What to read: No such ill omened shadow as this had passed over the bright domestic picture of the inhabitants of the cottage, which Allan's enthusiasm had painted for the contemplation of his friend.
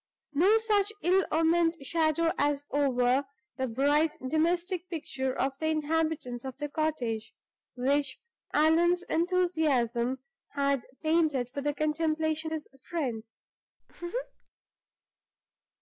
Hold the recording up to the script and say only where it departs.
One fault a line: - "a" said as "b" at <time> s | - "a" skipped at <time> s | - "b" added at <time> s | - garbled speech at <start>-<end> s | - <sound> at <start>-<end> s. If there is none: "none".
- "this had passed" skipped at 2.6 s
- "of" skipped at 12.5 s
- laugh at 13.8-14.5 s